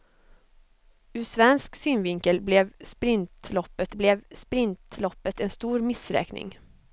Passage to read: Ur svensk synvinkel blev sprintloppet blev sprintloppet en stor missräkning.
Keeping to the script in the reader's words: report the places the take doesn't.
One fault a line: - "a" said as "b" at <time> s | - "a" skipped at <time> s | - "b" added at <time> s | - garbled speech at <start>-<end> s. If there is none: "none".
none